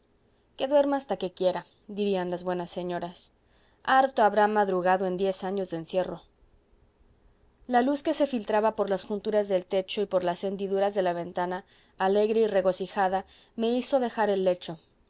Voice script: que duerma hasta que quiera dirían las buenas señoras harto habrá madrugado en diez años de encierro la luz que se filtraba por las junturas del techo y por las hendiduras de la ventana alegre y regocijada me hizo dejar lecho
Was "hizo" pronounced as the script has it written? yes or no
yes